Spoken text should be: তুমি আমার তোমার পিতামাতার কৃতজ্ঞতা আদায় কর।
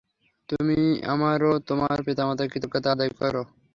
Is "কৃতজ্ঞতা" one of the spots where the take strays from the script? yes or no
no